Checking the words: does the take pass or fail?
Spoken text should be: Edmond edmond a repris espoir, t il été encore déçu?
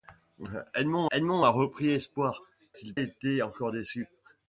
pass